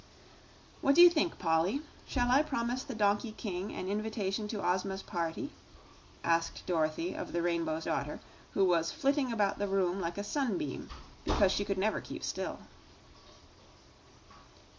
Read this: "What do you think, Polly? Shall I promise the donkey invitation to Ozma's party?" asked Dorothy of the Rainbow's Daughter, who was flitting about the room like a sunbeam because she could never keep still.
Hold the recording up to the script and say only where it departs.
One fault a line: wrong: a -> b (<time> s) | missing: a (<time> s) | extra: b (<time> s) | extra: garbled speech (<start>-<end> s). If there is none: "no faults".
extra: king an (3.3 s)